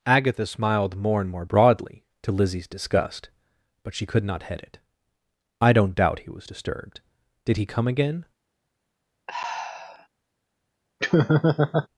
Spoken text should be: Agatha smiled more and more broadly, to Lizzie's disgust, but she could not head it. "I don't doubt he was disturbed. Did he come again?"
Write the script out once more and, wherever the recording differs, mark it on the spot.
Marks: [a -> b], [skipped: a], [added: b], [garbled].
Agatha smiled more and more broadly, to Lizzie's disgust, but she could not head it. "I don't doubt he was disturbed. Did he come again?"